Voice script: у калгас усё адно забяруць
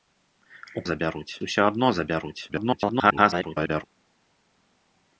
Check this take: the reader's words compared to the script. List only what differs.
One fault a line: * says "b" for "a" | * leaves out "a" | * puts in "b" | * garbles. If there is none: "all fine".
* says "забяруць" for "калгас"
* garbles